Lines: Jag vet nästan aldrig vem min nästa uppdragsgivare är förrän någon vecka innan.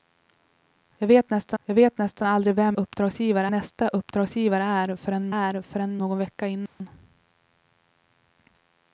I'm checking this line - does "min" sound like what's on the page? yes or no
no